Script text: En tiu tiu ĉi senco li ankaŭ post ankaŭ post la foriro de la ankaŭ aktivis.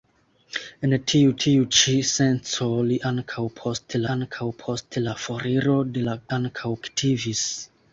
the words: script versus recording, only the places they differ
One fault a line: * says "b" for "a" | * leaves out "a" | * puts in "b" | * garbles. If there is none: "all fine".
all fine